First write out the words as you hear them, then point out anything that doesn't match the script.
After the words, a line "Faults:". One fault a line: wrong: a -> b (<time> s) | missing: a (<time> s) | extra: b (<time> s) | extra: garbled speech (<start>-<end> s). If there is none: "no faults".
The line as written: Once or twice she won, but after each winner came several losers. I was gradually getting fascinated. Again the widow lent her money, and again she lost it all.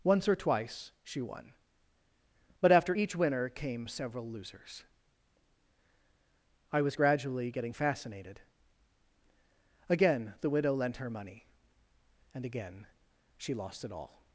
Once or twice she won, but after each winner came several losers. I was gradually getting fascinated. Again the widow lent her money, and again she lost it all.
Faults:
no faults